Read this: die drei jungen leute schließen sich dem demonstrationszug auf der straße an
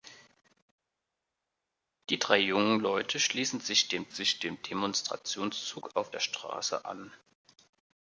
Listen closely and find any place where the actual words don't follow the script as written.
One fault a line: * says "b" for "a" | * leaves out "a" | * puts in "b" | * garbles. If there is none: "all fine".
* puts in "sich dem"